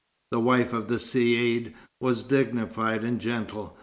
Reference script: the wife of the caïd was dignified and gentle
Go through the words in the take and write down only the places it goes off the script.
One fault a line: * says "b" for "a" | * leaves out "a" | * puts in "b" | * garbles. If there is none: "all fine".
all fine